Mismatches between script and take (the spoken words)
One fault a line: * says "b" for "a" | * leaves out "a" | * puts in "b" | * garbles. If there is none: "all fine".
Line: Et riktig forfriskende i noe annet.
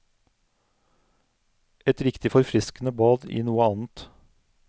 * puts in "bad"